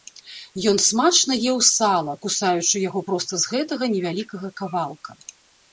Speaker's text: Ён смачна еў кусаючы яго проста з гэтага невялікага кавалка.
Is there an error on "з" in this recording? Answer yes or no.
no